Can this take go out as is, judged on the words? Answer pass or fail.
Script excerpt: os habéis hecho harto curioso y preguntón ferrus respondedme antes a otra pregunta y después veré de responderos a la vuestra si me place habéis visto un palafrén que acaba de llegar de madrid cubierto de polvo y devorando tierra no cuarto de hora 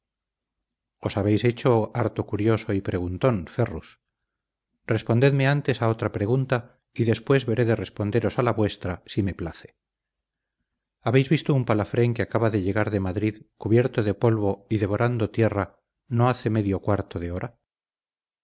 fail